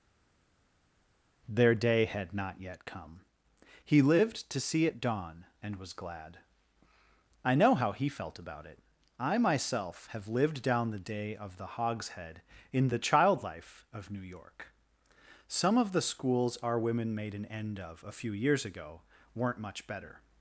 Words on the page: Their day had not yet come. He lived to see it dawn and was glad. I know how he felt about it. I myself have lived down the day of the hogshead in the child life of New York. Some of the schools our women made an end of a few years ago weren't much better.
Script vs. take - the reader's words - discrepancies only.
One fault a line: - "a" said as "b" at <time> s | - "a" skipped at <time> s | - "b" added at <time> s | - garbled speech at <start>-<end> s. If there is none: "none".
none